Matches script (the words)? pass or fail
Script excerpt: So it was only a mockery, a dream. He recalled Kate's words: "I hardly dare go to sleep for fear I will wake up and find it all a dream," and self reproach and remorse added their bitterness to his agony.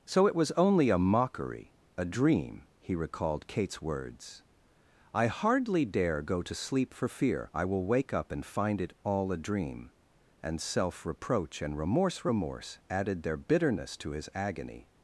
fail